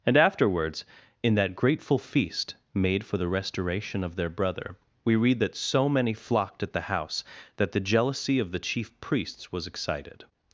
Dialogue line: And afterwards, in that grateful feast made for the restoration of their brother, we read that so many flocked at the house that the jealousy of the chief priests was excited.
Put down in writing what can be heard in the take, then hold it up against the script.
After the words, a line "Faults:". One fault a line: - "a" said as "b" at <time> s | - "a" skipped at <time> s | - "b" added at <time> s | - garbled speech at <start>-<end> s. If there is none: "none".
And afterwards, in that grateful feast made for the restoration of their brother, we read that so many flocked at the house that the jealousy of the chief priests was excited.
Faults:
none